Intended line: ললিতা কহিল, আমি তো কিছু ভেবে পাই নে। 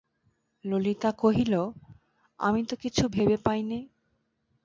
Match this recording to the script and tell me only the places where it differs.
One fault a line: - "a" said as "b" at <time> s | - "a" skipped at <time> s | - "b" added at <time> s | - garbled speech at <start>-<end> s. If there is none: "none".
none